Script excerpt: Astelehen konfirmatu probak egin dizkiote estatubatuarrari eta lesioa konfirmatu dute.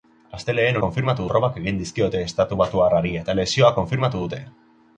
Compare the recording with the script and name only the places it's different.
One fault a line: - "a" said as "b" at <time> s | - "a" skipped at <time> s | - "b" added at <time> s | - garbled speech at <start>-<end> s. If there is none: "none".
none